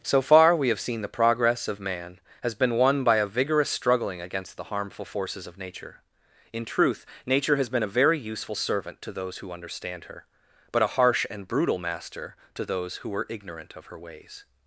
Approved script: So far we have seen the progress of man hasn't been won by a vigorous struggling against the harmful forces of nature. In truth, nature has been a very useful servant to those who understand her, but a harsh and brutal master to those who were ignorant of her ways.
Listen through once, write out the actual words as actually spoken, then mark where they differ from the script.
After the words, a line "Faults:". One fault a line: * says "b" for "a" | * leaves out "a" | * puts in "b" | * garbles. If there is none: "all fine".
So far we have seen the progress of man has been won by a vigorous struggling against the harmful forces of nature. In truth, nature has been a very useful servant to those who understand her, but a harsh and brutal master to those who were ignorant of her ways.
Faults:
* says "has" for "hasn't"